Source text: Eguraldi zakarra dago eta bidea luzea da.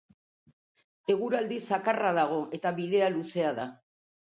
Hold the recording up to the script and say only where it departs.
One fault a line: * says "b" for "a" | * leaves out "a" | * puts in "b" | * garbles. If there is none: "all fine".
all fine